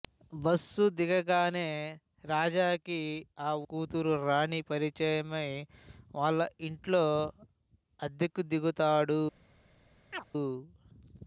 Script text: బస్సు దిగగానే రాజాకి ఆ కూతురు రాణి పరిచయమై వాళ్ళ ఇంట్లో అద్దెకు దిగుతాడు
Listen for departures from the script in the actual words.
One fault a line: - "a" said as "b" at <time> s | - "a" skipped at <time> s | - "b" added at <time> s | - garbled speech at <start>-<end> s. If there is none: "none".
none